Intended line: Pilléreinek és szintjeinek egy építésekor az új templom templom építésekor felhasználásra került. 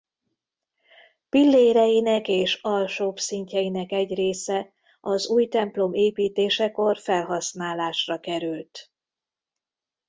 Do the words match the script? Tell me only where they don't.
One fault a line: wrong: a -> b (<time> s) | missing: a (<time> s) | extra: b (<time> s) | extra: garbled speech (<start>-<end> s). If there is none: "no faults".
extra: alsóbb (2.6 s)
wrong: építésekor -> része (4.1 s)
missing: templom (5.9 s)